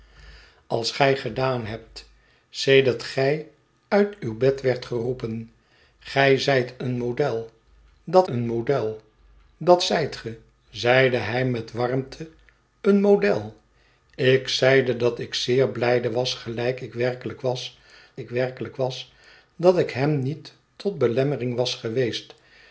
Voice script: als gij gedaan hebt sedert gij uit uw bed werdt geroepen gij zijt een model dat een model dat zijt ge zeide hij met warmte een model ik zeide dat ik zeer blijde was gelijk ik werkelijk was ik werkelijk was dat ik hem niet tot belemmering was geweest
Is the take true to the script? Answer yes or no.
yes